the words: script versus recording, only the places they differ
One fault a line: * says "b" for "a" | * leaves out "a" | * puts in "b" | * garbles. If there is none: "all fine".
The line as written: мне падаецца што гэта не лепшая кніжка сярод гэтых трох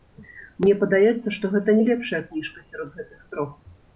all fine